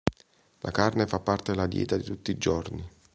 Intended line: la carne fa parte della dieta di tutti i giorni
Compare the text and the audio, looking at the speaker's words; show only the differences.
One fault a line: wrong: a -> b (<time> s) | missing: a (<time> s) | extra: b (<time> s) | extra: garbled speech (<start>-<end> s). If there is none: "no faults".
no faults